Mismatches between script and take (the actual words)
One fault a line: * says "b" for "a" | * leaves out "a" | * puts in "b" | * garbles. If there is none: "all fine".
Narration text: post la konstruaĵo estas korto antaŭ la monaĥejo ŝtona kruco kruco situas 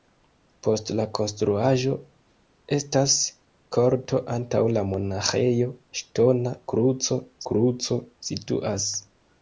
all fine